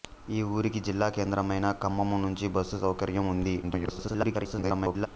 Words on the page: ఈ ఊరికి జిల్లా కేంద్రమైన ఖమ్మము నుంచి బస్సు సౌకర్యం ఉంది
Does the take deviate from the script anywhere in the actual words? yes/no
yes